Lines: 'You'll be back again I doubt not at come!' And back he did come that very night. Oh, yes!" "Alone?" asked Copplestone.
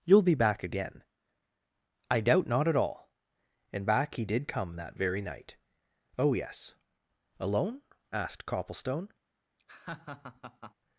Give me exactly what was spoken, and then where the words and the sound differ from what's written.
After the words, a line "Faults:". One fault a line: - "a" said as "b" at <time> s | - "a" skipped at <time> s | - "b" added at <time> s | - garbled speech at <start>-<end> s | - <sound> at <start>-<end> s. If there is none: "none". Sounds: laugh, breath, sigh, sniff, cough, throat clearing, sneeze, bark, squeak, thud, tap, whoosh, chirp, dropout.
'You'll be back again I doubt not at all!' And back he did come that very night. Oh, yes!" "Alone?" asked Copplestone.
Faults:
- "come" said as "all" at 2.8 s
- laugh at 9.6-10.7 s